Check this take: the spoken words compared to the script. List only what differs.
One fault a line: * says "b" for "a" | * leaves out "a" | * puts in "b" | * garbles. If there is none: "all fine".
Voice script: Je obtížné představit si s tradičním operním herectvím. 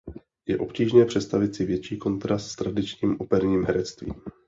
* puts in "větší kontrast"